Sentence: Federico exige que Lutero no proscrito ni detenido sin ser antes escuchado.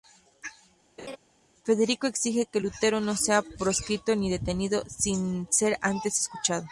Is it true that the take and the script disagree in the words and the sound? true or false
true